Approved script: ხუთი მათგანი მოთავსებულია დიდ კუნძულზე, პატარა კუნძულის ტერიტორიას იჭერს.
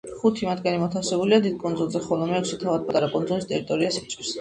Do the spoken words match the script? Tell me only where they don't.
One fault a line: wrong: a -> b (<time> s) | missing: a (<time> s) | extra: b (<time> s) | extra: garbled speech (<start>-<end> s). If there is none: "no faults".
extra: ხოლო მეექვსე თავად (2.1 s)